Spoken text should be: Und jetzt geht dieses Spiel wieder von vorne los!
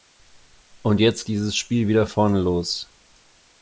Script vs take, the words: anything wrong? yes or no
yes